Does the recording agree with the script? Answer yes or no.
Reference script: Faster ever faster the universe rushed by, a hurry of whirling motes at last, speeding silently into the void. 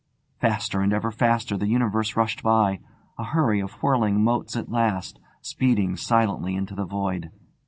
no